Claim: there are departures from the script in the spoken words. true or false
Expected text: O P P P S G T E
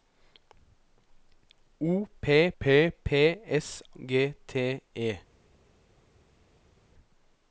false